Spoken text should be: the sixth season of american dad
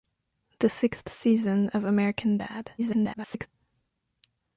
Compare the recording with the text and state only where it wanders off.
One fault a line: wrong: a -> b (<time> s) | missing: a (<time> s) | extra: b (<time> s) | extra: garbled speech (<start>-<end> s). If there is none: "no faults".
extra: garbled speech (2.8-3.5 s)